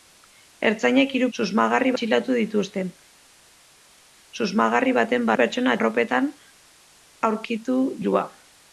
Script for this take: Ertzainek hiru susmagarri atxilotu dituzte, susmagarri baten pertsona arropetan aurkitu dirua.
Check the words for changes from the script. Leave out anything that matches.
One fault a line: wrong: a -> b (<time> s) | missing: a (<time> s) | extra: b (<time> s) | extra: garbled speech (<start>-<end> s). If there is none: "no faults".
no faults